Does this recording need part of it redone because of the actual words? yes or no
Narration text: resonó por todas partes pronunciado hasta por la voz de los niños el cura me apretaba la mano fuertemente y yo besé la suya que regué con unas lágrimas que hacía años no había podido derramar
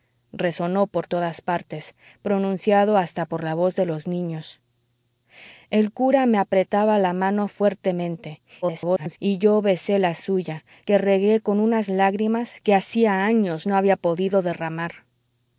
yes